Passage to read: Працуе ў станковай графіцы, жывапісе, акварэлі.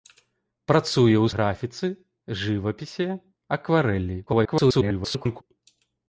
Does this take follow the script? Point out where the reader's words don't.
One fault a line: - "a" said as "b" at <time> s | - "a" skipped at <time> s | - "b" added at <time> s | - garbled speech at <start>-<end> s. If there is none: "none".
- "станковай" skipped at 1.3 s
- garbled speech at 4.3-5.4 s